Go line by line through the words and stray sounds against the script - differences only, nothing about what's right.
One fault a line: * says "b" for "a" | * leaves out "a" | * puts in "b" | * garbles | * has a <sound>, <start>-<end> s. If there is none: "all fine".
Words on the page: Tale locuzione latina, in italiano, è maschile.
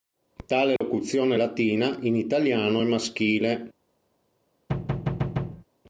* has a dropout, 0.8-0.8 s
* has a thud, 4.7-5.6 s